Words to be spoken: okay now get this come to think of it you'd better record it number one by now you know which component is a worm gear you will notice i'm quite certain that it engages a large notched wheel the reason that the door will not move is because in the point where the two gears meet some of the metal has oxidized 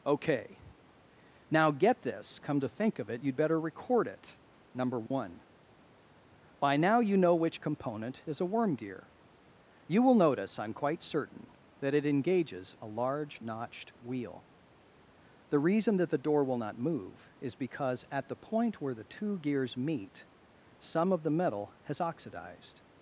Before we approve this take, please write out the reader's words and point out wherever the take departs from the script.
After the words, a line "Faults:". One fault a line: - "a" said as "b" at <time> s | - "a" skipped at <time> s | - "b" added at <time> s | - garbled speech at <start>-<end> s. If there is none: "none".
okay now get this come to think of it you'd better record it number one by now you know which component is a worm gear you will notice i'm quite certain that it engages a large notched wheel the reason that the door will not move is because at the point where the two gears meet some of the metal has oxidized
Faults:
- "in" said as "at" at 18.1 s